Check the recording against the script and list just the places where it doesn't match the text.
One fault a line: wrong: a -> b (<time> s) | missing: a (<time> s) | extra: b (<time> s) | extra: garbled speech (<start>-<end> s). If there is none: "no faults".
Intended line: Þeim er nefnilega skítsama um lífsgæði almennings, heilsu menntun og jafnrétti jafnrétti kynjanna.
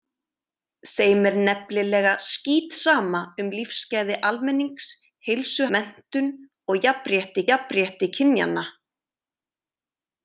no faults